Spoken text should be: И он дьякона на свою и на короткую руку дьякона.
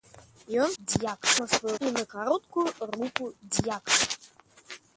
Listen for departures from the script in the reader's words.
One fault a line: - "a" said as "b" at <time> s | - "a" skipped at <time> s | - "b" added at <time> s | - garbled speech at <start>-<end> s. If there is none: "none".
none